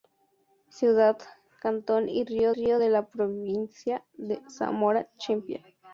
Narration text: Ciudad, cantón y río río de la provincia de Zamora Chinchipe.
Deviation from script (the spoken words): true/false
false